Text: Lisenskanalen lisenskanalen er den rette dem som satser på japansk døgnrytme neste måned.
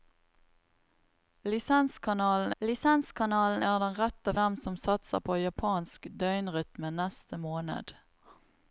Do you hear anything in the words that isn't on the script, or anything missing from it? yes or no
no